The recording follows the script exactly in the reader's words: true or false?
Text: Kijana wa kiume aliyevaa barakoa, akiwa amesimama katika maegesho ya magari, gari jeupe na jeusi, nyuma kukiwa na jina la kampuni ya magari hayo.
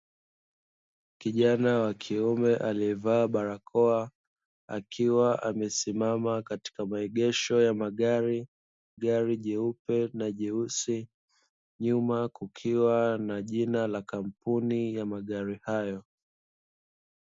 true